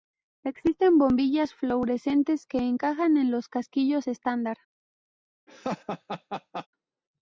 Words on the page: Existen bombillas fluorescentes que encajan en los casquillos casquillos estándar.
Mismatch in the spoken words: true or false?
true